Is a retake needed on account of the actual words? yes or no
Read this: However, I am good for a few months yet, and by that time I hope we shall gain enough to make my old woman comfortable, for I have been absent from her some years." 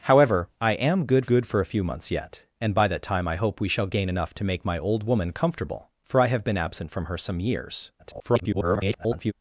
yes